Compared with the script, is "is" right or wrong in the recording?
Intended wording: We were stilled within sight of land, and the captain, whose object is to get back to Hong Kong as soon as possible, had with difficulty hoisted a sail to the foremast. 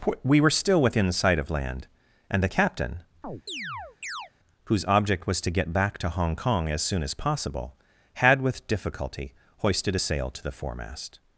wrong